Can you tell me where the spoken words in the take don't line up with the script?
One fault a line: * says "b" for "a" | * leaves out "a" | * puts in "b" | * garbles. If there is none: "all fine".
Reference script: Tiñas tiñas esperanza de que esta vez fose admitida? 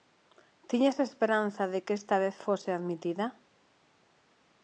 * leaves out "tiñas"